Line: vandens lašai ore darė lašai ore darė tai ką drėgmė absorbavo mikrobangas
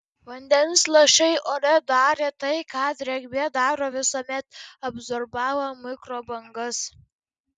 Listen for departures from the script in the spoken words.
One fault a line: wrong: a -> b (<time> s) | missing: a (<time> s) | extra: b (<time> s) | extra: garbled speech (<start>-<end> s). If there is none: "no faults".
missing: lašai ore darė (2.3 s)
extra: daro visuomet (3.6 s)